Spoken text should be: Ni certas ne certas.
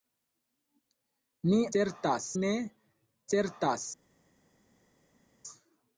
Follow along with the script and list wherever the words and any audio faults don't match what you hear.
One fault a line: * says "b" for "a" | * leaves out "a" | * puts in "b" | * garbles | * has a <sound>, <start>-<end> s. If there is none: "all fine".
all fine